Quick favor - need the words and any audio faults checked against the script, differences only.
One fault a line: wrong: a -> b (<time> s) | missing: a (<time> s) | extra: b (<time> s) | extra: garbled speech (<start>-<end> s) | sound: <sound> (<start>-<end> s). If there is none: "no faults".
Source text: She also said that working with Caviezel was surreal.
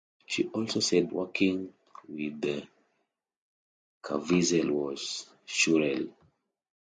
missing: that (1.1 s)